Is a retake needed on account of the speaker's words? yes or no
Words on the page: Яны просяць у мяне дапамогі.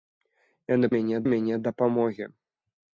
yes